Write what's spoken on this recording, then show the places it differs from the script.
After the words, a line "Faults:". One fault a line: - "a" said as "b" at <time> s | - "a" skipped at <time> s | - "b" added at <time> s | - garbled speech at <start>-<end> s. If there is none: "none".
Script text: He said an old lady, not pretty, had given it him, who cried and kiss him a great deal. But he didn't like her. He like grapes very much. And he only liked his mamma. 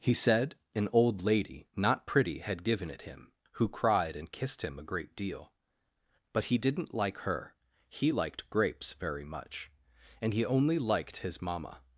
He said an old lady, not pretty, had given it him, who cried and kissed him a great deal. But he didn't like her. He liked grapes very much. And he only liked his mamma.
Faults:
- "kiss" said as "kissed" at 4.3 s
- "like" said as "liked" at 8.1 s